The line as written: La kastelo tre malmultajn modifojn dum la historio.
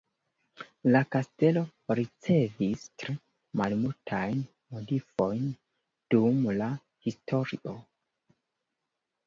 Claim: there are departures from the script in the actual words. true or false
true